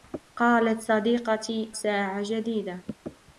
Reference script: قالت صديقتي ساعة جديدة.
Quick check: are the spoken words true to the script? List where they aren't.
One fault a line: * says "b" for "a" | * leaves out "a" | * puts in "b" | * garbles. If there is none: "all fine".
all fine